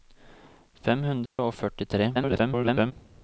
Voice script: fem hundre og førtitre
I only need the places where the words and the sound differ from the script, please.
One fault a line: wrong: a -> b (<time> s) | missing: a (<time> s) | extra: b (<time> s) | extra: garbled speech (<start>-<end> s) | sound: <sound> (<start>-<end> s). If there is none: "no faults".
sound: dropout (1.3-1.4 s)
extra: garbled speech (2.1-2.9 s)